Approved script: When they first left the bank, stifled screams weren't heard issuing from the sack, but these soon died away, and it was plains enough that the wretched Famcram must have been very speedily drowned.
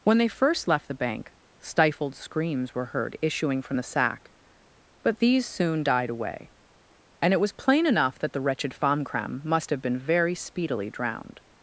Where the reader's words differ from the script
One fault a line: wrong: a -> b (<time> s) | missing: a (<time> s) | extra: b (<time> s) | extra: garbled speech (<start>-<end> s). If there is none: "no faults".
wrong: weren't -> were (2.7 s)
wrong: plains -> plain (7.5 s)